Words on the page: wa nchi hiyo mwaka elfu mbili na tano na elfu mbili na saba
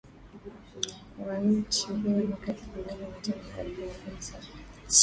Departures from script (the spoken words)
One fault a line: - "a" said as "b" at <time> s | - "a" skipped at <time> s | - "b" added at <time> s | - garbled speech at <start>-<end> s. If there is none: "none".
none